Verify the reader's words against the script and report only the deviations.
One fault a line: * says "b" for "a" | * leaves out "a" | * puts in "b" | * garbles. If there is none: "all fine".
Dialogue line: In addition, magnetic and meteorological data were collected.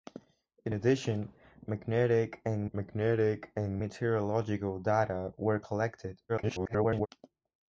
* puts in "magnetic and"
* garbles